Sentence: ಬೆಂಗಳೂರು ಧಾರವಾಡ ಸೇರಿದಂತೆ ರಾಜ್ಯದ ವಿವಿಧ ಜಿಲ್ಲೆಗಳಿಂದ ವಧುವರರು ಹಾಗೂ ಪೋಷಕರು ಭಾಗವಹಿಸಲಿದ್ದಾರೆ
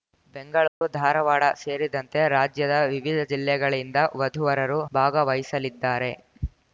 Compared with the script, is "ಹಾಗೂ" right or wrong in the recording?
wrong